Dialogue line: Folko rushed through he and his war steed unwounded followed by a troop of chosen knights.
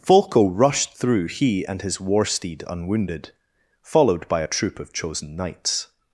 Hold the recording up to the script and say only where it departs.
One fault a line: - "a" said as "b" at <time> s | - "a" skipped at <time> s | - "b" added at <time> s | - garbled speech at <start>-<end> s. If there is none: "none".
none